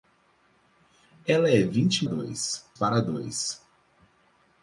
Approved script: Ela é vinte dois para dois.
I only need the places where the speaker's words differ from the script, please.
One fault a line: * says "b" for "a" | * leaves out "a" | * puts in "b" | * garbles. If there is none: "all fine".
all fine